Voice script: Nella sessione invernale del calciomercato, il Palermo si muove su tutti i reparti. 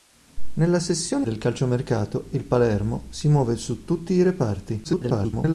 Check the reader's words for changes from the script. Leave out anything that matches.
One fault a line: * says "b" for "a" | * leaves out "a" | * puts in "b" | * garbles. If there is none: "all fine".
* leaves out "invernale"
* garbles